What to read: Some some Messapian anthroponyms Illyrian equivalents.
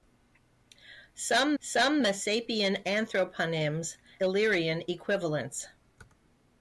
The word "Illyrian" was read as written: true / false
true